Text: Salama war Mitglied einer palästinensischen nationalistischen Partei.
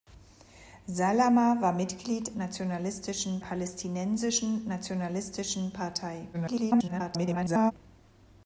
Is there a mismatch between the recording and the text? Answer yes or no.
yes